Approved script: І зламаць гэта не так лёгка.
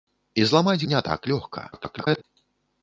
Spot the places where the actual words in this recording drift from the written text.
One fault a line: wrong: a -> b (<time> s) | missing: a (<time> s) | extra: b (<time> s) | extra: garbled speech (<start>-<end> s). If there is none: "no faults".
missing: гэта (0.8 s)
extra: garbled speech (1.7-2.2 s)